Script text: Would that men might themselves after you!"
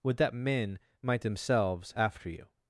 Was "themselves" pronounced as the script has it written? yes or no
yes